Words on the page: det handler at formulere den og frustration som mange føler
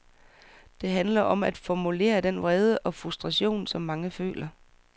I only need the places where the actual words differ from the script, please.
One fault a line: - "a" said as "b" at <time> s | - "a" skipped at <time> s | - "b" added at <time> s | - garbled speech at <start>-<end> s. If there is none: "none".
- "om" added at 1.2 s
- "vrede" added at 2.4 s